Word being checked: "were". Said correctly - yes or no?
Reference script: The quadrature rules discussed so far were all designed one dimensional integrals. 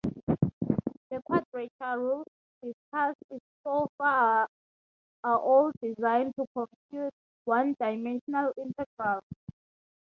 no